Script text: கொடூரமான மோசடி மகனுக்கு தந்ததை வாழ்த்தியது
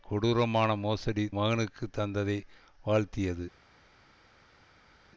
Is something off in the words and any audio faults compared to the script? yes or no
no